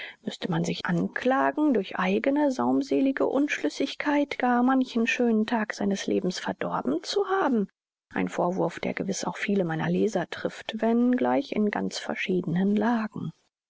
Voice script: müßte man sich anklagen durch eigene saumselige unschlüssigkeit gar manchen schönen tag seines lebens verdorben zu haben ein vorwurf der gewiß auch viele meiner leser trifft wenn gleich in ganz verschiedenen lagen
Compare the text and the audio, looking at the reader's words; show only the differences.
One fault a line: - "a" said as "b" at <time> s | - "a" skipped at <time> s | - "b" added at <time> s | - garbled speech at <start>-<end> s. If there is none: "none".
none